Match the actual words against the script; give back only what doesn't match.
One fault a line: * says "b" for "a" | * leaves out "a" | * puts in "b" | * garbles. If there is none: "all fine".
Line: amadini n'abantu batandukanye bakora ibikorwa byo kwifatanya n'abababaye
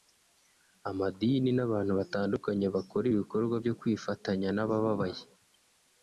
all fine